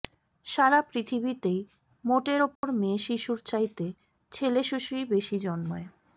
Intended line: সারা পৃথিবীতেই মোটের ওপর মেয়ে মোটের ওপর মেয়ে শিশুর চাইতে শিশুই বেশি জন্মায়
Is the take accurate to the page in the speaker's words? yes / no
no